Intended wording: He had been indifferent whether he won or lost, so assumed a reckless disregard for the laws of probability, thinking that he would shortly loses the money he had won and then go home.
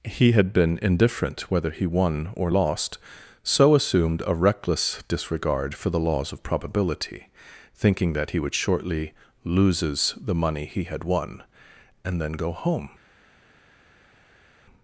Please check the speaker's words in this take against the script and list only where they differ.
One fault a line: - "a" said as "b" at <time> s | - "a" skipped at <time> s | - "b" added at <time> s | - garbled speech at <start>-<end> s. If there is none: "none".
none